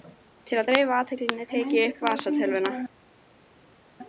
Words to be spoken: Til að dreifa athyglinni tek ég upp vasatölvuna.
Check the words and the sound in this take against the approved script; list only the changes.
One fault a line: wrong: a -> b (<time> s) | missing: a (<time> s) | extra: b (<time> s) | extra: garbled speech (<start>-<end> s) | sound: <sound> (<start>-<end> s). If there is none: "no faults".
no faults